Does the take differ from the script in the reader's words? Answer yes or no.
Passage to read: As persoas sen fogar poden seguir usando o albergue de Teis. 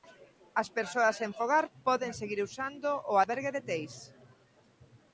no